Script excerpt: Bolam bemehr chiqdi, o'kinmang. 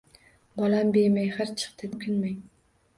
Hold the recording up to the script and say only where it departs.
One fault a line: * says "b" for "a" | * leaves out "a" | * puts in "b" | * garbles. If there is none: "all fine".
all fine